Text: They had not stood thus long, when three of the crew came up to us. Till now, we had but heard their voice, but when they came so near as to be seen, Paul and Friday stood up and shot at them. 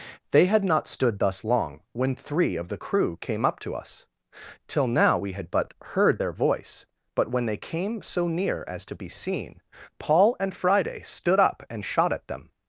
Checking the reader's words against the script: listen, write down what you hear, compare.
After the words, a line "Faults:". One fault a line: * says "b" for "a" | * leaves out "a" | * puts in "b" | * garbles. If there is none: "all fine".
They had not stood thus long, when three of the crew came up to us. Till now, we had but heard their voice, but when they came so near as to be seen, Paul and Friday stood up and shot at them.
Faults:
all fine